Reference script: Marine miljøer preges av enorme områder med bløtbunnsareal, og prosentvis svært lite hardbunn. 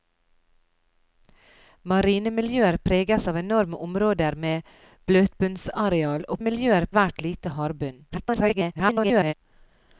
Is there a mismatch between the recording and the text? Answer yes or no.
yes